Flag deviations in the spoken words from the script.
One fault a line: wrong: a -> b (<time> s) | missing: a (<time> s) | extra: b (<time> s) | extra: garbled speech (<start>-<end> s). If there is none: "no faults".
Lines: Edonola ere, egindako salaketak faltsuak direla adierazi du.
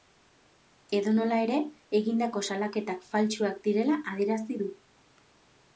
no faults